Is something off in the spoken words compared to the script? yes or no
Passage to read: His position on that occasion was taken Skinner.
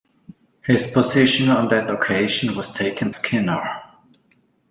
no